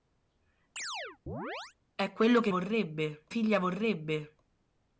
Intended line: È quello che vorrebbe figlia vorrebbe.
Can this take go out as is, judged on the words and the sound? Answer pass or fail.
fail